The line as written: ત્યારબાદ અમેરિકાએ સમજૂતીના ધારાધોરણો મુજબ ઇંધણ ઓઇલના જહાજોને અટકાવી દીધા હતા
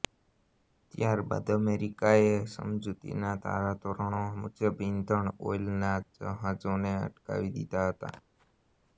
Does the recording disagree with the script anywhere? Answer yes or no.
no